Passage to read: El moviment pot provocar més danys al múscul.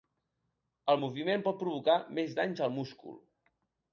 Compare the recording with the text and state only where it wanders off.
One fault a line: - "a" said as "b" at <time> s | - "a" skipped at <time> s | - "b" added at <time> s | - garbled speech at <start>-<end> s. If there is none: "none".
none